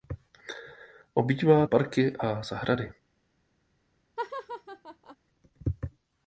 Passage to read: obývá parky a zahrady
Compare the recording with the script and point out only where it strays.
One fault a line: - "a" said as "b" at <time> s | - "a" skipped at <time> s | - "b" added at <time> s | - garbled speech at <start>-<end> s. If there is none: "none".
none